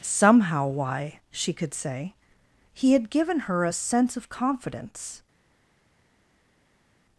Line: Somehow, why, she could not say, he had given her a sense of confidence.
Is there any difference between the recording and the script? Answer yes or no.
yes